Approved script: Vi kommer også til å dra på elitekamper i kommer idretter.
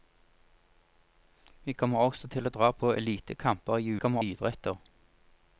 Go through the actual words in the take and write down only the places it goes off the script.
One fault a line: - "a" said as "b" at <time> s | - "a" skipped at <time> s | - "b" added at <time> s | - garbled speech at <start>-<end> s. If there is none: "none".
none